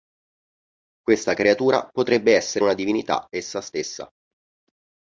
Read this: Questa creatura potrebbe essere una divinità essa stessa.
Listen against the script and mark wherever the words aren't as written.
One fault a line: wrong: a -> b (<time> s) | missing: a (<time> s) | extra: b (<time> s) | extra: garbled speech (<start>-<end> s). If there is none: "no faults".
no faults